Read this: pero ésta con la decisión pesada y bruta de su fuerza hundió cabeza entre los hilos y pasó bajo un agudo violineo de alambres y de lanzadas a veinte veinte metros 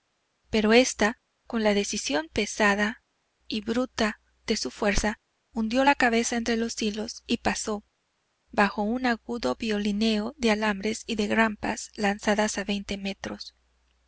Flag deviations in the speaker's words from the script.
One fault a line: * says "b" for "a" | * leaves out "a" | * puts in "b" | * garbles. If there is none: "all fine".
* puts in "la"
* puts in "grampas"
* leaves out "veinte"